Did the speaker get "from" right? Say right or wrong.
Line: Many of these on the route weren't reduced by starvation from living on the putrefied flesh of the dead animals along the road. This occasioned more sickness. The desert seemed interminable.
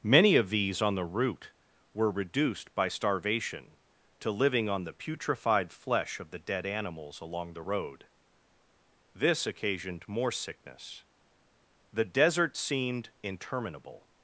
wrong